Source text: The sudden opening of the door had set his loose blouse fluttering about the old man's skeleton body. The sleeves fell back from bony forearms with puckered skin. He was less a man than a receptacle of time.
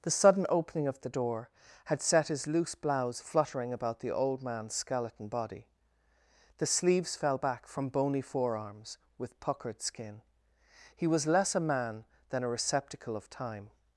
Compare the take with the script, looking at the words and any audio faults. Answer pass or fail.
pass